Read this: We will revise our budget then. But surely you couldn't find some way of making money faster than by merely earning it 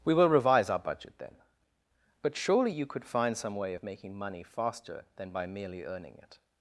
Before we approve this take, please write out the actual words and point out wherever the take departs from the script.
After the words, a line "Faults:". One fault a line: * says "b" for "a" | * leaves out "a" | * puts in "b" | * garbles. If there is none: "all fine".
We will revise our budget then. But surely you could find some way of making money faster than by merely earning it
Faults:
* says "could" for "couldn't"